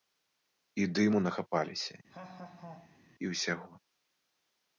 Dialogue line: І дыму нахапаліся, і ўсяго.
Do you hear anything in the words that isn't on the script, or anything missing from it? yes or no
no